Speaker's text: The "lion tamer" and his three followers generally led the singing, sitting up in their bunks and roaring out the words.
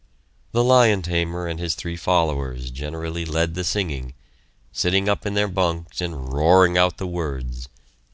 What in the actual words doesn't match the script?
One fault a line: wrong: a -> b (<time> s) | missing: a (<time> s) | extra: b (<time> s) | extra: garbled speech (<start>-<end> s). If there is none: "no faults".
no faults